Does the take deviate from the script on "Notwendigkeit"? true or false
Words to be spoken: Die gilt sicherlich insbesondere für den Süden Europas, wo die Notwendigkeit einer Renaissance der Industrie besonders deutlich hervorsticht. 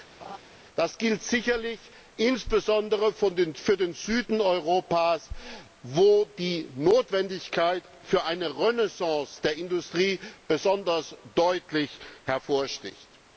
false